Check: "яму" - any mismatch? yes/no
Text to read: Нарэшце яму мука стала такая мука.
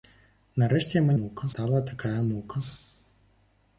no